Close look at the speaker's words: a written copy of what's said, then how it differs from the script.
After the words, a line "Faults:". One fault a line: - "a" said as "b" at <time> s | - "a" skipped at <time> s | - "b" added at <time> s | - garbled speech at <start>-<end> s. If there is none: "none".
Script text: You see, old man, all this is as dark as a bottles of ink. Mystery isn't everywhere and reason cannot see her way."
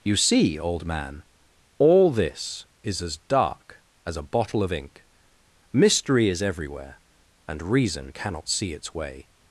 You see, old man, all this is as dark as a bottle of ink. Mystery is everywhere and reason cannot see its way."
Faults:
- "bottles" said as "bottle" at 4.2 s
- "isn't" said as "is" at 6.3 s
- "her" said as "its" at 8.7 s